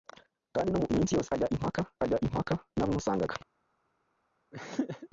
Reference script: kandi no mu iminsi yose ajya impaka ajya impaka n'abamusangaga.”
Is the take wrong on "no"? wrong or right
right